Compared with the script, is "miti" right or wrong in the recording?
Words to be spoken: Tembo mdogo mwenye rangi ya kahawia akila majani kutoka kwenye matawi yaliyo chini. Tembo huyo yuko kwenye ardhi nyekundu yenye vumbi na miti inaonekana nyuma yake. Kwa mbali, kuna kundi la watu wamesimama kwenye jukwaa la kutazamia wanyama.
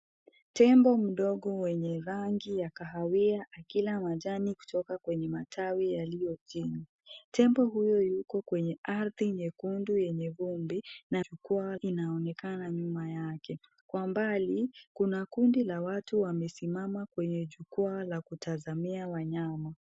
wrong